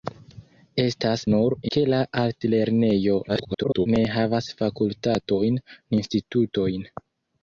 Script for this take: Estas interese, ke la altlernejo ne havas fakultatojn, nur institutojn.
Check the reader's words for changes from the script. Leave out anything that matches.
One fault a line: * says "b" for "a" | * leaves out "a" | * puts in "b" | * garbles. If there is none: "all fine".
* says "nur" for "interese"
* garbles
* leaves out "nur"